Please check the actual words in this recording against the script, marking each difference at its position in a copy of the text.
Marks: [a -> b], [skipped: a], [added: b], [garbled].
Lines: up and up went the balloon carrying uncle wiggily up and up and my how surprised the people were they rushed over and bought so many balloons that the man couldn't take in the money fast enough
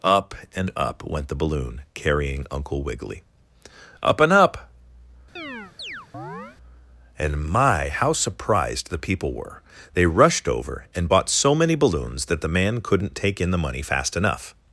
up and up went the balloon carrying uncle wiggily up and up and my how surprised the people were they rushed over and bought so many balloons that the man couldn't take in the money fast enough